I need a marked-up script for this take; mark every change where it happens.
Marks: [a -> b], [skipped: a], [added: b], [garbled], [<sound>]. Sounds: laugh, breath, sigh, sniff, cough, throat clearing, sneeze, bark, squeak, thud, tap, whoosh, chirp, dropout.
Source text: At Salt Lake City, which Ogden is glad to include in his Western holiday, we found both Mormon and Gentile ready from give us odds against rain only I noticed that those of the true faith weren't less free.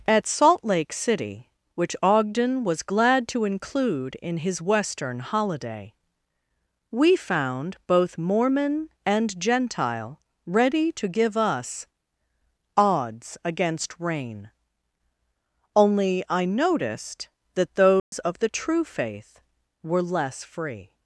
At Salt Lake City, which Ogden [is -> was] glad to include in his Western holiday, we found both Mormon and Gentile ready [from -> to] give us odds against rain only I noticed that those [dropout] of the true faith [weren't -> were] less free.